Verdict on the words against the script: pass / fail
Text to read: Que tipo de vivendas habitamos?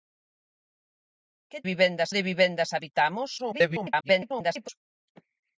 fail